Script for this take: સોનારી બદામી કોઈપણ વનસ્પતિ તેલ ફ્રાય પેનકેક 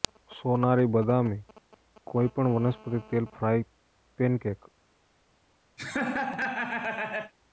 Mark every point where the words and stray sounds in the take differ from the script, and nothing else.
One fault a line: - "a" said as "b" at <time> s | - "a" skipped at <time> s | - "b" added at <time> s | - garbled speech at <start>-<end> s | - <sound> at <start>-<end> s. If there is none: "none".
- laugh at 5.8-7.3 s